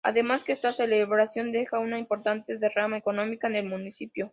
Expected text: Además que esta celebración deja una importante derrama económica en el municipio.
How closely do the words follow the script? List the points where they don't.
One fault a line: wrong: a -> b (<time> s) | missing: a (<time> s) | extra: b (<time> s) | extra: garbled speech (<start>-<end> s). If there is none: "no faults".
no faults